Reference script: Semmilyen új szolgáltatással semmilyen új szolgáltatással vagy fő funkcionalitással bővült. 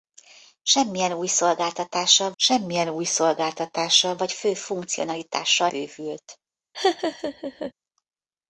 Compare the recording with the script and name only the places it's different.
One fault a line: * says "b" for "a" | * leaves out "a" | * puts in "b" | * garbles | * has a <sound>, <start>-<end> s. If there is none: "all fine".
* has a laugh, 6.7-7.7 s